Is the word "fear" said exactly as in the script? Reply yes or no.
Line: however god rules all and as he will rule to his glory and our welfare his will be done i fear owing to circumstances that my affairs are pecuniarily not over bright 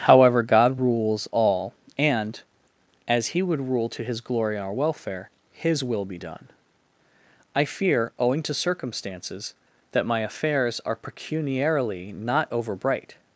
yes